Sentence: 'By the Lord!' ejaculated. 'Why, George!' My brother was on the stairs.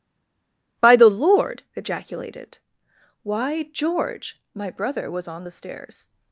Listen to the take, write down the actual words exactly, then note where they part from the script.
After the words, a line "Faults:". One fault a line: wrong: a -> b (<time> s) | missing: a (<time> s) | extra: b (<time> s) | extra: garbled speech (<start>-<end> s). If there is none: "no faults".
'By the Lord!' ejaculated. 'Why, George!' My brother was on the stairs.
Faults:
no faults